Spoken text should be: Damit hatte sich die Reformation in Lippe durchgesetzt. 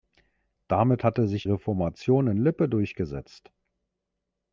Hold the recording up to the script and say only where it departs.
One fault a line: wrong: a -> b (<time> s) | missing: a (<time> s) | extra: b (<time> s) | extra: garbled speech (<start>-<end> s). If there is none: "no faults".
missing: die (1.4 s)